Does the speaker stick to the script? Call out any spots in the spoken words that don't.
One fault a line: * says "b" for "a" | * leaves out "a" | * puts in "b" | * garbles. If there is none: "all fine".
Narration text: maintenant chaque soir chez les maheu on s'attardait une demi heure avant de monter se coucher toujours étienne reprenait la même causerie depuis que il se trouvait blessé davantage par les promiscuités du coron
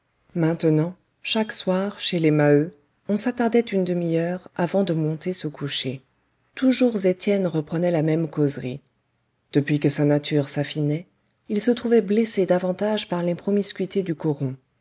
* puts in "sa nature s'affinait"